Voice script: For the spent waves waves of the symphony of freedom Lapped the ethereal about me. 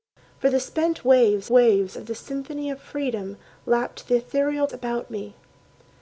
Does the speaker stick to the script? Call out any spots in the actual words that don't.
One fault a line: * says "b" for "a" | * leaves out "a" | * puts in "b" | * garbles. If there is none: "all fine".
all fine